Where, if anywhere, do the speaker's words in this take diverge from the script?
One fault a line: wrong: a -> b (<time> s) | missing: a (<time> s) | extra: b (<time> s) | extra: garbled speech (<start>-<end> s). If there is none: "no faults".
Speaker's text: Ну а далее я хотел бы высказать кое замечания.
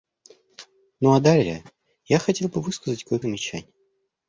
no faults